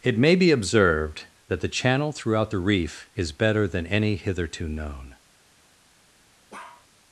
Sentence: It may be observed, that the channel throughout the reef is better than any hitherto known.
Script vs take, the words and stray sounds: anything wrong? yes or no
yes